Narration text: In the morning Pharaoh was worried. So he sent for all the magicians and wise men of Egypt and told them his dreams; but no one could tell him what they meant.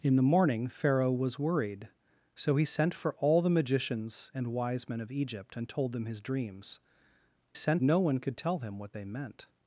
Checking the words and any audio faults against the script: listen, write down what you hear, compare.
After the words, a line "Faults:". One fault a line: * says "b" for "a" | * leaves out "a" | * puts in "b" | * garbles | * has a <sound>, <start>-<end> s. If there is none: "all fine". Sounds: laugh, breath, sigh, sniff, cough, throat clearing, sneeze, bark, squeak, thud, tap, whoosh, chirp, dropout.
In the morning Pharaoh was worried. So he sent for all the magicians and wise men of Egypt and told them his dreams; sent no one could tell him what they meant.
Faults:
* says "sent" for "but"